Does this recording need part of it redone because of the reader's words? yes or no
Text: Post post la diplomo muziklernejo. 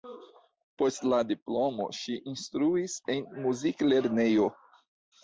yes